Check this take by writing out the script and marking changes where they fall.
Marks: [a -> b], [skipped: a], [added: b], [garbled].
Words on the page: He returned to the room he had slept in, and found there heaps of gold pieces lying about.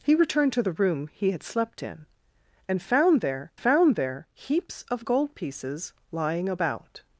He returned to the room he had slept in, and found there [added: found there] heaps of gold pieces lying about.